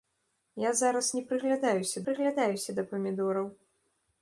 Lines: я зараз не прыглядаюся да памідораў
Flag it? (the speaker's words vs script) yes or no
yes